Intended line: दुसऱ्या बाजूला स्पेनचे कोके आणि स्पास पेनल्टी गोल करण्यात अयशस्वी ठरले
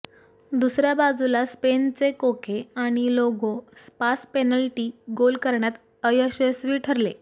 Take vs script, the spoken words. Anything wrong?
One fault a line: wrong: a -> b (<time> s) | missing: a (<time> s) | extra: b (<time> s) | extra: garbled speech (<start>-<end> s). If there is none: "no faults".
extra: लागो (3.1 s)